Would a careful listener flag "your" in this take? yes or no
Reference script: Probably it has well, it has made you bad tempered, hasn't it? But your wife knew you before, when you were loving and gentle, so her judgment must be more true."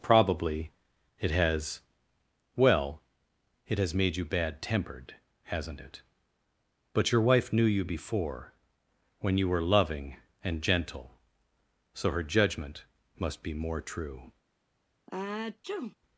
no